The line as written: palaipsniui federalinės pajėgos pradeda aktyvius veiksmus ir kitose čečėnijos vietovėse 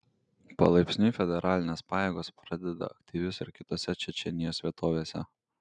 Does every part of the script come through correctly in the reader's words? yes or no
no